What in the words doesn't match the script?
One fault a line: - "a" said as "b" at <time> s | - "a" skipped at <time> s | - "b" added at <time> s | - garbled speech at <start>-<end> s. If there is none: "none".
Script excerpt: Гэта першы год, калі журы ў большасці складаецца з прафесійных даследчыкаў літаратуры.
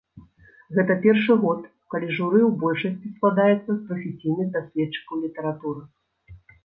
none